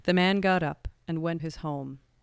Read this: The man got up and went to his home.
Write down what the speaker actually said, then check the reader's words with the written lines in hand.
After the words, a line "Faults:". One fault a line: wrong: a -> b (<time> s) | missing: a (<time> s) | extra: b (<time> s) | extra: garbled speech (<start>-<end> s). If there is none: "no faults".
The man got up and went his home.
Faults:
missing: to (1.4 s)